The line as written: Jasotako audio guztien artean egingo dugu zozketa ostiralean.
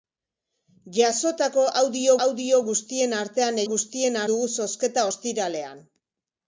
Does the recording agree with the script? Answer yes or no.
no